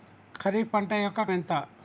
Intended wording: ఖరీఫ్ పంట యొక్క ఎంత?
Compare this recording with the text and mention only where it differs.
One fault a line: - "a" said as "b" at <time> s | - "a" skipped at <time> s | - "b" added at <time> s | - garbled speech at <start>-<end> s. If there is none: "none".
none